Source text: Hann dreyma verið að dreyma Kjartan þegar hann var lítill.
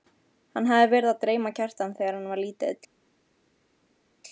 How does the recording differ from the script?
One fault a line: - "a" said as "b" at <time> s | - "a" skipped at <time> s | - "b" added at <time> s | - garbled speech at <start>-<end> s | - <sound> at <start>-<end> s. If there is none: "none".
- "dreyma" said as "hafði" at 0.7 s